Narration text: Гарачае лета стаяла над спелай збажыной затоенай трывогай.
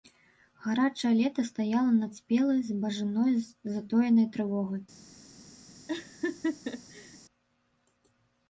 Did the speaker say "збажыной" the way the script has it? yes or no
yes